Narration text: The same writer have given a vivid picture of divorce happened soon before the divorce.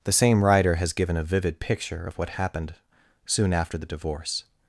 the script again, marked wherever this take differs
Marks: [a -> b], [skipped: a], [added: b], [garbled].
The same writer [have -> has] given a vivid picture of [divorce -> what] happened soon [before -> after] the divorce.